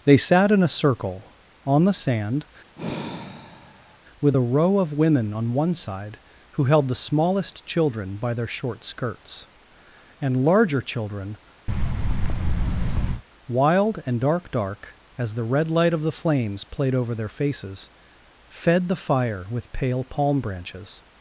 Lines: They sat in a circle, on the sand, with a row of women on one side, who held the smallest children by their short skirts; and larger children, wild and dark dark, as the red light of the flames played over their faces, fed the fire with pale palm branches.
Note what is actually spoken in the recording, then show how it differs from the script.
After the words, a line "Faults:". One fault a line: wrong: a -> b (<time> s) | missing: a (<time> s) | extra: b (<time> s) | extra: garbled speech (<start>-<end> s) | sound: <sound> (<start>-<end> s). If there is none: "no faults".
They sat in a circle, on the sand, with a row of women on one side, who held the smallest children by their short skirts; and larger children, wild and dark dark, as the red light of the flames played over their faces, fed the fire with pale palm branches.
Faults:
sound: sigh (2.8-4.0 s)
sound: thud (11.7-13.2 s)